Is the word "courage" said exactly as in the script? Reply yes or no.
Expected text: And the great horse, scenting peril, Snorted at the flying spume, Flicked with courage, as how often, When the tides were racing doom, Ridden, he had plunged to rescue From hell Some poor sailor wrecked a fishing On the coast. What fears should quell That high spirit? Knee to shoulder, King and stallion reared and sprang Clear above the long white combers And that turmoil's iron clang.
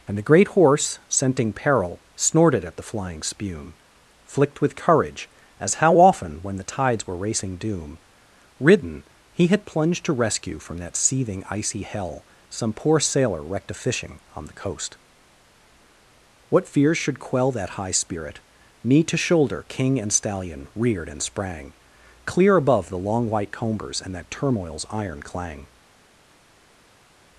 yes